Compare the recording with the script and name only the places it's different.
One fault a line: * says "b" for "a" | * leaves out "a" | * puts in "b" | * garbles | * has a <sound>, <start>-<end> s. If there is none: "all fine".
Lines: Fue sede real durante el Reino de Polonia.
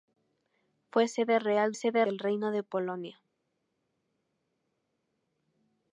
* says "sede" for "durante"